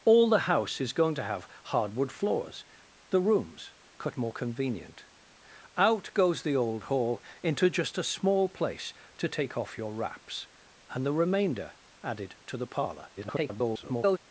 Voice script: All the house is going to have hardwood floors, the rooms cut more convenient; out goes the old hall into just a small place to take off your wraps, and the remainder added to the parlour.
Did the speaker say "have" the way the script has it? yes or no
yes